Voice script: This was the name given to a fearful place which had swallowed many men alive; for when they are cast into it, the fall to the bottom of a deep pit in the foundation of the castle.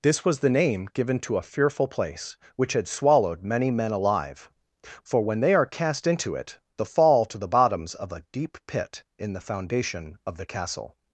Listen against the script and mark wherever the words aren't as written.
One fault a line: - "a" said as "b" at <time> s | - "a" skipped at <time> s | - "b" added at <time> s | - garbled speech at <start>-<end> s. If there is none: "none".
- "bottom" said as "bottoms" at 7.5 s